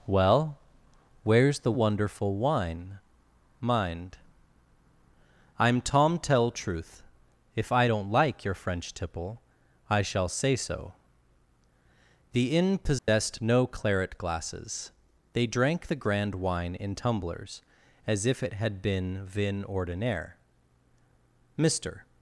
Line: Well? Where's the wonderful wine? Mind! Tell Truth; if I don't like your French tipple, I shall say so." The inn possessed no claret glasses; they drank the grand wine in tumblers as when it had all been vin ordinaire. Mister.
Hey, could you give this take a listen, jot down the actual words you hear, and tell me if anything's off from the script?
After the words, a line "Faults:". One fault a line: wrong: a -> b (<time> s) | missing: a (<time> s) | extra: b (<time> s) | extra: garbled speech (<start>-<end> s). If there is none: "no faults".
Well? Where's the wonderful wine? Mind! I'm Tom Tell Truth; if I don't like your French tipple, I shall say so." The inn possessed no claret glasses; they drank the grand wine in tumblers as if it had been vin ordinaire. Mister.
Faults:
extra: I'm Tom (5.6 s)
wrong: when -> if (18.2 s)
missing: all (18.8 s)